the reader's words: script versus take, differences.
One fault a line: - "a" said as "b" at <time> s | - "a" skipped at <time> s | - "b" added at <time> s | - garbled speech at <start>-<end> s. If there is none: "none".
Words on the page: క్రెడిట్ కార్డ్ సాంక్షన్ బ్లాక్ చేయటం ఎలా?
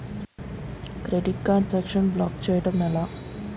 none